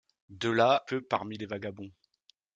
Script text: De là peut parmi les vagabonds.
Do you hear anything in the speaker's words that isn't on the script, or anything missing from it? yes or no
no